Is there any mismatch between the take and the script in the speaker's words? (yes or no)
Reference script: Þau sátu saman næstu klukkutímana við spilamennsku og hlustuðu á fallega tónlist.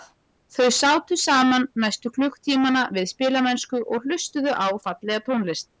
no